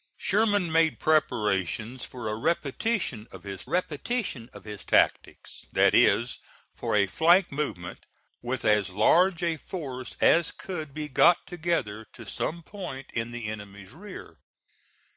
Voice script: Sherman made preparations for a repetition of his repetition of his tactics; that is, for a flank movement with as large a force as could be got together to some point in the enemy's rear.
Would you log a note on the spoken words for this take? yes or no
no